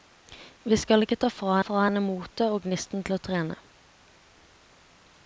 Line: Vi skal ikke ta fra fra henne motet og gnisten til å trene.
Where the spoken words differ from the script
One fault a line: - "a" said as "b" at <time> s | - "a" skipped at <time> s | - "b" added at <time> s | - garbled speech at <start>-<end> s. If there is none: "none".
none